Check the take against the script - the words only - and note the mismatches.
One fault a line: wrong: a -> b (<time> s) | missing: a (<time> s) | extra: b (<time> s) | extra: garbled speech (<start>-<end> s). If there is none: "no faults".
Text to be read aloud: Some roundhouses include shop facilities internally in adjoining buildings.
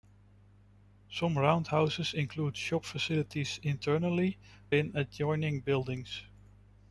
no faults